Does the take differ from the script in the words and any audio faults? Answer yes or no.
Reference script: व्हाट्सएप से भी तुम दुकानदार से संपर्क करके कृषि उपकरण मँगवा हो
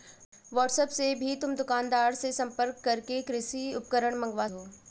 no